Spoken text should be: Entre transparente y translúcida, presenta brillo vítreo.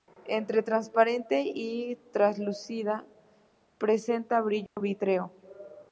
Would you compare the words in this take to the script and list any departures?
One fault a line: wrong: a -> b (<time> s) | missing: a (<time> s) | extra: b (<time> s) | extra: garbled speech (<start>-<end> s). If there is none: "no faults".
no faults